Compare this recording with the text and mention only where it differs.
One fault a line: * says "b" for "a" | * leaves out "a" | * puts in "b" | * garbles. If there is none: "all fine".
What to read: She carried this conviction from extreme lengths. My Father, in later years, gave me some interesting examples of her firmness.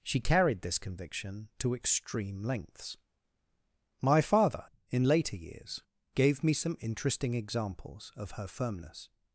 * says "to" for "from"